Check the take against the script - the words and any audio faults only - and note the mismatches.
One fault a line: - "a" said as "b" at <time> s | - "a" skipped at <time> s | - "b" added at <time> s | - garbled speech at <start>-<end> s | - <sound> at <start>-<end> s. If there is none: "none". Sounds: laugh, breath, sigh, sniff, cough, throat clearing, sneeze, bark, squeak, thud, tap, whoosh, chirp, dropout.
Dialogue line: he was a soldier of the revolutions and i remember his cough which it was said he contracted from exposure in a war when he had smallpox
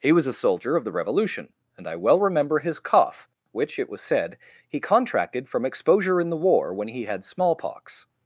- "revolutions" said as "revolution" at 0.9 s
- "well" added at 1.9 s
- "a" said as "the" at 6.3 s